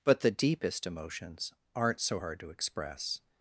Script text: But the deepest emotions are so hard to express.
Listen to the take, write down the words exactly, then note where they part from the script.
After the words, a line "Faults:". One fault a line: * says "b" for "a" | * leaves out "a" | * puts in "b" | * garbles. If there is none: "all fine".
But the deepest emotions aren't so hard to express.
Faults:
* says "aren't" for "are"